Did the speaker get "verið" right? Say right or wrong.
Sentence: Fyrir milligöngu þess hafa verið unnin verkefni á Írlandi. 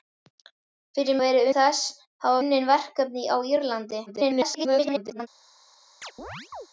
wrong